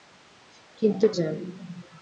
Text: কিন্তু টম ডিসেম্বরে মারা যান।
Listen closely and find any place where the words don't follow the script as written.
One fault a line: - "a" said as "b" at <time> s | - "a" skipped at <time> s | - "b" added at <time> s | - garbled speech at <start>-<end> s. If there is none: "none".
- "টম ডিসেম্বরে মারা" skipped at 1.1 s